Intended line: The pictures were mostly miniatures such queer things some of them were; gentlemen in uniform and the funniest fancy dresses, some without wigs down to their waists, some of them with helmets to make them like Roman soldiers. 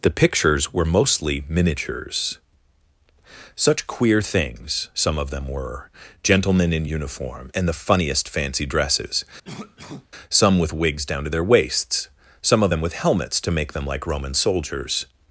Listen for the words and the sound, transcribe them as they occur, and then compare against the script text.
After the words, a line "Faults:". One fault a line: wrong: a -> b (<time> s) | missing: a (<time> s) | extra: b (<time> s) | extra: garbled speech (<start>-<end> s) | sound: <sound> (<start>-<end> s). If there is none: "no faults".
The pictures were mostly miniatures such queer things some of them were; gentlemen in uniform and the funniest fancy dresses, some with wigs down to their waists, some of them with helmets to make them like Roman soldiers.
Faults:
sound: cough (9.4-10.1 s)
wrong: without -> with (10.6 s)